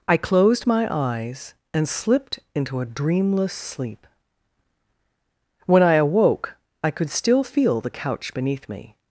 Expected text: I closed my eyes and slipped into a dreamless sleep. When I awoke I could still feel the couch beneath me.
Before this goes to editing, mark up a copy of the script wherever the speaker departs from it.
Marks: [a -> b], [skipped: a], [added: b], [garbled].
I closed my eyes and slipped into a dreamless sleep. When I awoke I could still feel the couch beneath me.